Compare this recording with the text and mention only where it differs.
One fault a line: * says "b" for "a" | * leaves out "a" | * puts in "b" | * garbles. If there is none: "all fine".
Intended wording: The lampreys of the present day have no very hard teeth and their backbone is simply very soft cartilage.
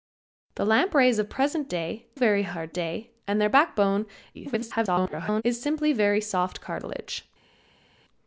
* leaves out "have no"
* says "day" for "teeth"
* garbles